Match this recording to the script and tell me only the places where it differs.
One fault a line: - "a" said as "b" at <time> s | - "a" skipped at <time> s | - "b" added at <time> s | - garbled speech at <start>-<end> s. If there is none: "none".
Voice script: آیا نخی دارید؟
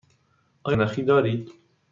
none